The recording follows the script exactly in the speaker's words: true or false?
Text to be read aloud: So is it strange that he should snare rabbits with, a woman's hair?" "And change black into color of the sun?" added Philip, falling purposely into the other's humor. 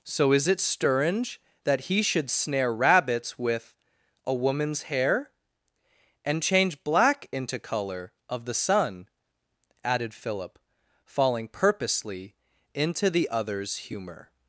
true